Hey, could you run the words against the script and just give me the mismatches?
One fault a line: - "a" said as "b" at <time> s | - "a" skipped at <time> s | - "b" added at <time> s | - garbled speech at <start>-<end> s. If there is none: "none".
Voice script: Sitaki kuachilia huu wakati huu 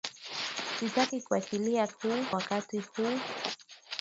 none